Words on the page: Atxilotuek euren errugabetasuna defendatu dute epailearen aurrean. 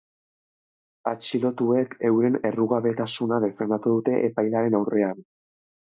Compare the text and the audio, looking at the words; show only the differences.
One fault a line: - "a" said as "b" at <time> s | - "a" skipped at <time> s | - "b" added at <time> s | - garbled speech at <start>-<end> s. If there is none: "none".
none